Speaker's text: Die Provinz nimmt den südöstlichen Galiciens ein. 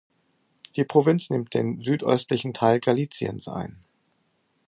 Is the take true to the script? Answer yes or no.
no